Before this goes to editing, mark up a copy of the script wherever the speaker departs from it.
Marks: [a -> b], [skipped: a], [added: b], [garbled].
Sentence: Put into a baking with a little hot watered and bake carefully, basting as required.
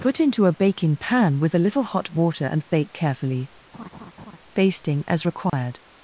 Put into a baking [added: pan] with a little hot [watered -> water] and bake carefully, basting as required.